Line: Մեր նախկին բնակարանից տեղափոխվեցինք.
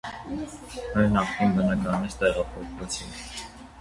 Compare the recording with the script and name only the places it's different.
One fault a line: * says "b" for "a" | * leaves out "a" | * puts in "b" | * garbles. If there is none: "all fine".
all fine